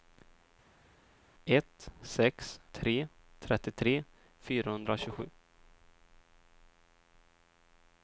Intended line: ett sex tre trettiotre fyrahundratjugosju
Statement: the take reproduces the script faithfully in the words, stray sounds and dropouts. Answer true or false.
true